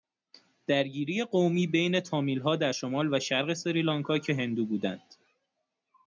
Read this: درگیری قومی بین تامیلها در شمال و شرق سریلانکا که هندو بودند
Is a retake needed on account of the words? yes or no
no